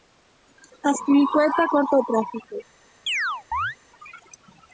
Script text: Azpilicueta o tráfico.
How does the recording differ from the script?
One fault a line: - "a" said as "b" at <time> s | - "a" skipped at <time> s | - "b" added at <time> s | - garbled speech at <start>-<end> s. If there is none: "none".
- "corta" added at 1.7 s